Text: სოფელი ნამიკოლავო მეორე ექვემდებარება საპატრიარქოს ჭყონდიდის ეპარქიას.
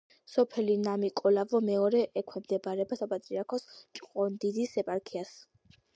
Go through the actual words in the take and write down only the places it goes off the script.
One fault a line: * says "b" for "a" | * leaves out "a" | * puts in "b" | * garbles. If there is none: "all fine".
all fine